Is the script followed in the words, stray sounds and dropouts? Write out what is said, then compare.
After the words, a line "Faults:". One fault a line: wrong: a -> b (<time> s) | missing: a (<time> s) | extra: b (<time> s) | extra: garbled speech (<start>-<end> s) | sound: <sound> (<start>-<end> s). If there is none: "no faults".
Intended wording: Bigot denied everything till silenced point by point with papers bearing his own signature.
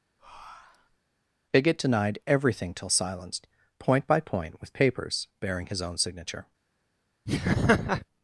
Bigot denied everything till silenced point by point with papers bearing his own signature.
Faults:
sound: breath (0.2-1.0 s)
sound: laugh (7.3-8.1 s)